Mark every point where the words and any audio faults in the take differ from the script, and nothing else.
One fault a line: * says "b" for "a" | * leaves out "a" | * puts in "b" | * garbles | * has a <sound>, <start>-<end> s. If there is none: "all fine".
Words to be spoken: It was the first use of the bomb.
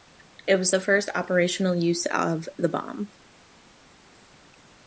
* puts in "operational"